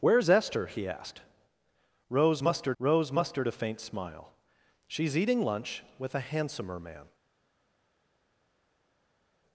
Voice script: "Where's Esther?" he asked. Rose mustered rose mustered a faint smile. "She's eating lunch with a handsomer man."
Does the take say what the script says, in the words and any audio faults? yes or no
yes